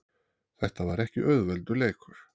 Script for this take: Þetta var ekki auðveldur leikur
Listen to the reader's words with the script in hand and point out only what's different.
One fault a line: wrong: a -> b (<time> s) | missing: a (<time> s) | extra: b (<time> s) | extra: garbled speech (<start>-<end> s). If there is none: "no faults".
no faults